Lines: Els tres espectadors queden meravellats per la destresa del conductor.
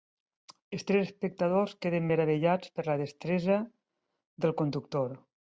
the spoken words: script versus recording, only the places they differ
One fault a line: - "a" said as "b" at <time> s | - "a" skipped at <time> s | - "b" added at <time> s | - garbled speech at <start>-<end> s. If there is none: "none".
none